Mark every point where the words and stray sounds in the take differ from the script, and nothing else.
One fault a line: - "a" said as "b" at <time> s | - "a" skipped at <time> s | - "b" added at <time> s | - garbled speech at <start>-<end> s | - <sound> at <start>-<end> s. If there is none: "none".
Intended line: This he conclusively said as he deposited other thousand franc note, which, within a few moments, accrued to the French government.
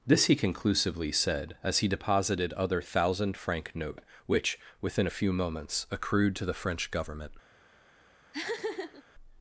- laugh at 8.3-9.0 s